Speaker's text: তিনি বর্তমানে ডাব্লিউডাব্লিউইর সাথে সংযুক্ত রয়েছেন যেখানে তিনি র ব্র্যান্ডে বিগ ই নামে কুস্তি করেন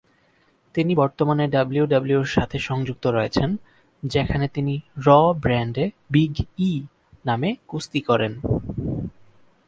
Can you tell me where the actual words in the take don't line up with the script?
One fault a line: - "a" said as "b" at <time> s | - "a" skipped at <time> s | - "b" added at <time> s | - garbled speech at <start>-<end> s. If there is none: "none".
none